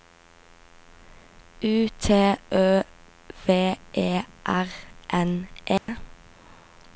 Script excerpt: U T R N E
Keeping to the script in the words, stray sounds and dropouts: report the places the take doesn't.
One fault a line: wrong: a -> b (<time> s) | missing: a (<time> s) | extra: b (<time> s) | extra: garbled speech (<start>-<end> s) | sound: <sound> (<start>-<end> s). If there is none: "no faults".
extra: Ø V E (2.5 s)
sound: dropout (5.8-5.9 s)